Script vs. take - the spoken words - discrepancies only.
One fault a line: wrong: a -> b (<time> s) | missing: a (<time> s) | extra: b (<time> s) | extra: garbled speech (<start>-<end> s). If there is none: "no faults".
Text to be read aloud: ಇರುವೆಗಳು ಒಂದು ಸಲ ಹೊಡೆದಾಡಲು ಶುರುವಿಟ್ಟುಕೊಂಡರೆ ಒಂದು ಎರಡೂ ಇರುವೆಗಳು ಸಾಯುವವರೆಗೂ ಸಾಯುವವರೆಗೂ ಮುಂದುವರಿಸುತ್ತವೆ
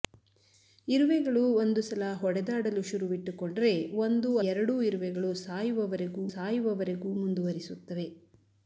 no faults